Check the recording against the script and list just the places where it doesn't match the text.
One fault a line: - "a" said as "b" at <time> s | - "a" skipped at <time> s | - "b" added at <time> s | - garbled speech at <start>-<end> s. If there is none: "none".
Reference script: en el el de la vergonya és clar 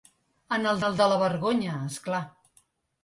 none